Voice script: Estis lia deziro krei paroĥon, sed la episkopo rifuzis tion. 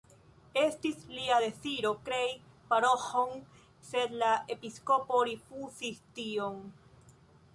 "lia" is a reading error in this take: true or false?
false